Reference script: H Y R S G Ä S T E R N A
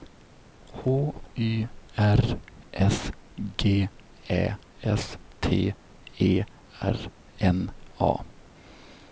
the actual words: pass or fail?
pass